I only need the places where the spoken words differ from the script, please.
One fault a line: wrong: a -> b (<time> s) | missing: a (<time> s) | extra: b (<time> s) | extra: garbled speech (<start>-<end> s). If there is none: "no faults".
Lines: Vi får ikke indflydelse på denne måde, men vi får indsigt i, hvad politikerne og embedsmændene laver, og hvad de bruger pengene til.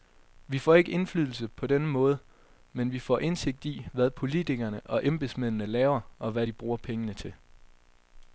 no faults